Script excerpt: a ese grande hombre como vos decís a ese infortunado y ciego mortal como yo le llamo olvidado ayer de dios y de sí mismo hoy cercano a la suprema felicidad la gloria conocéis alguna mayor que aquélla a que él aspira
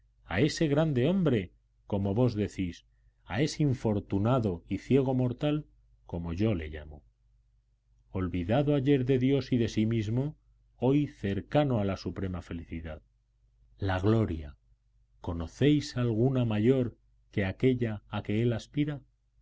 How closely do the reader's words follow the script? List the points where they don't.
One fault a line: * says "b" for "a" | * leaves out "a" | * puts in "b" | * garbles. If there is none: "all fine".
all fine